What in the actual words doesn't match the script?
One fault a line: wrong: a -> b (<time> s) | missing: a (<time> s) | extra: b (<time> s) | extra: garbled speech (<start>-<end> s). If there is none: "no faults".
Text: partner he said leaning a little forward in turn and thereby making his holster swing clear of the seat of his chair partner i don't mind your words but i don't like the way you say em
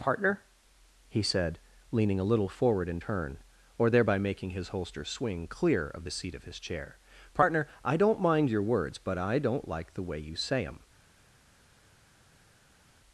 wrong: and -> or (3.8 s)